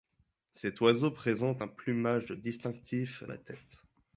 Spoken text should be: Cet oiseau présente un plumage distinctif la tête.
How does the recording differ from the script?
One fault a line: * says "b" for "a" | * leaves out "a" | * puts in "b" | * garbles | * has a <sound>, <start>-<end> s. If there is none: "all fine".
all fine